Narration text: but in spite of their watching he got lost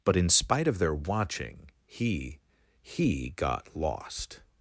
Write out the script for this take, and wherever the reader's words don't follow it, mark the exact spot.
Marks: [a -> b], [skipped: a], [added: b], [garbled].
but in spite of their watching he [added: he] got lost